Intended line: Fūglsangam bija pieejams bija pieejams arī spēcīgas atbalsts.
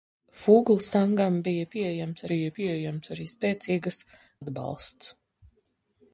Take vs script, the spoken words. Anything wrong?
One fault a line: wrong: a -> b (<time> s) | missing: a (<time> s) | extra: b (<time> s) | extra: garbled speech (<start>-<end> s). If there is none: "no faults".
no faults